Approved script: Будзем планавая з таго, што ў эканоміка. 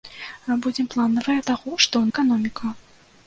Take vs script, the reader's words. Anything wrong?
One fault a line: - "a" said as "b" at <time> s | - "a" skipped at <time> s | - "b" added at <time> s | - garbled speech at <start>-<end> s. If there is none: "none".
none